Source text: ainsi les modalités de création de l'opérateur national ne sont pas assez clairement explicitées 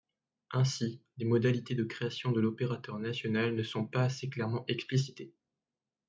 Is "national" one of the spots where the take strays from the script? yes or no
no